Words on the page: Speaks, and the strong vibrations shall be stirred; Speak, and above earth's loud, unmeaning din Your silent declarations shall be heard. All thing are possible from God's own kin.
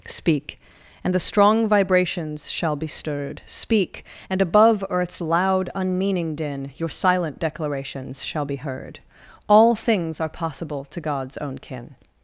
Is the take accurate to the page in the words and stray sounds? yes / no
no